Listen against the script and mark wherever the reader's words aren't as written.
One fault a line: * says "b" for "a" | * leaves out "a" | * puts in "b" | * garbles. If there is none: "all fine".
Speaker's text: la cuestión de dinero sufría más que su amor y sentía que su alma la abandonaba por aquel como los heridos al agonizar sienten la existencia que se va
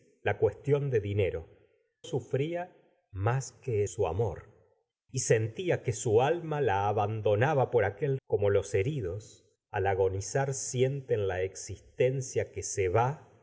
all fine